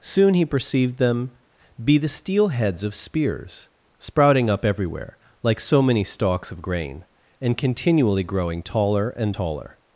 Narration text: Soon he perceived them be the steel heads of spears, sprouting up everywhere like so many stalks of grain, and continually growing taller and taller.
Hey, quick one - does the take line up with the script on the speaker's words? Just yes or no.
yes